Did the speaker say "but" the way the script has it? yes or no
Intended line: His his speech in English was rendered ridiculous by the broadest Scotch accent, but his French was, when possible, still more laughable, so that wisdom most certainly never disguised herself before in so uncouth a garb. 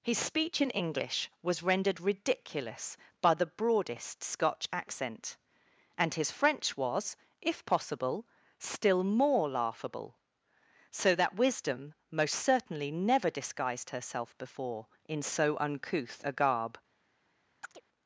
no